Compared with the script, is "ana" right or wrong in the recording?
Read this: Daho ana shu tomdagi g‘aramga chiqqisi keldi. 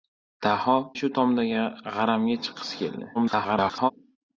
wrong